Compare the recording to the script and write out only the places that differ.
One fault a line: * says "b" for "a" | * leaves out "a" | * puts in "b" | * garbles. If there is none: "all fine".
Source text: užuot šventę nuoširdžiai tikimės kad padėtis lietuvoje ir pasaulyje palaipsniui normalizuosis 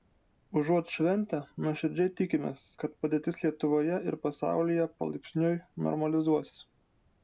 all fine